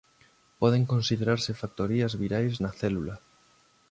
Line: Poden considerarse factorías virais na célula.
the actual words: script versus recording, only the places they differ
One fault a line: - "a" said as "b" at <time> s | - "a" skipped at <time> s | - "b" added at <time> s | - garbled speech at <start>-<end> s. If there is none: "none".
none